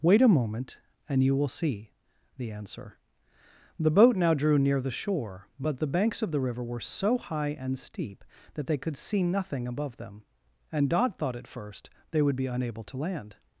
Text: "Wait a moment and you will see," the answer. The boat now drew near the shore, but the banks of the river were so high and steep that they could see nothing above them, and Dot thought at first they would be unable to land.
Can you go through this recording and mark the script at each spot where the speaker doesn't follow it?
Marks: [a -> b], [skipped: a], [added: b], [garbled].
"Wait a moment and you will see," the answer. The boat now drew near the shore, but the banks of the river were so high and steep that they could see nothing above them, and Dot thought at first they would be unable to land.